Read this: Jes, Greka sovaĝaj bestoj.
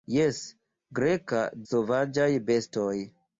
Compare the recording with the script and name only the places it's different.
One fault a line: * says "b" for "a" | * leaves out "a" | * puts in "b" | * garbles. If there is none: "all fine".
all fine